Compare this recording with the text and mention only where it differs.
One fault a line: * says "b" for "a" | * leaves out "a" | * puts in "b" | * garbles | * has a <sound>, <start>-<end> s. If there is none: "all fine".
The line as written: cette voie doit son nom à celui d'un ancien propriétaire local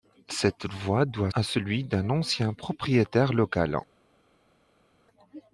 * leaves out "son nom"